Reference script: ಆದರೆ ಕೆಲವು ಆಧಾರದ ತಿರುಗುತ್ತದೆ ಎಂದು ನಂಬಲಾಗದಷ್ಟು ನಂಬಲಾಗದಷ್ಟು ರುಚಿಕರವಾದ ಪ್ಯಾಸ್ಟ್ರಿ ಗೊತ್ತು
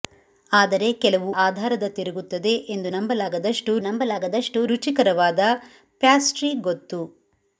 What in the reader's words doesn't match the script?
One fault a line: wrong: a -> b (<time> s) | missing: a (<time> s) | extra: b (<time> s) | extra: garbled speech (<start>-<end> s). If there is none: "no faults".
no faults